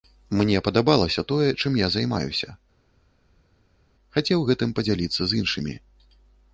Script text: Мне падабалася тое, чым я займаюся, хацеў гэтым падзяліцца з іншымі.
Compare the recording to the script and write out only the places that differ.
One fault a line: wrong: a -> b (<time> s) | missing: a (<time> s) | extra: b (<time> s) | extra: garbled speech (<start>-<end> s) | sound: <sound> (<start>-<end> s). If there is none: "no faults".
no faults